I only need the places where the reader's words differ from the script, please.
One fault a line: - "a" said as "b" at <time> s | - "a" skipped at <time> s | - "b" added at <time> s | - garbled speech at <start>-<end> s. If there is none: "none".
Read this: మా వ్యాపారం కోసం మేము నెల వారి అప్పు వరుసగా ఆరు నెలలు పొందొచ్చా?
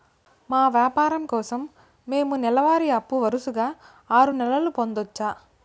none